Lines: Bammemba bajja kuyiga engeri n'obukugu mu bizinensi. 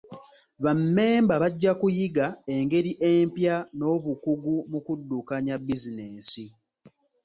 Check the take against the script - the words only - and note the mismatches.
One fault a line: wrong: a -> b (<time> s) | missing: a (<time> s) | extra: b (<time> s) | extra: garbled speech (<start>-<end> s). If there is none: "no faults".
extra: empya (3.1 s)
extra: kuddukanya (4.9 s)